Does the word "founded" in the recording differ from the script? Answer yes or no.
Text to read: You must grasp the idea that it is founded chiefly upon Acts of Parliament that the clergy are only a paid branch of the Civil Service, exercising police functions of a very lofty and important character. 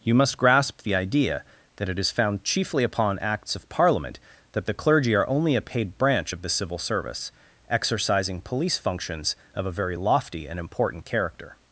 yes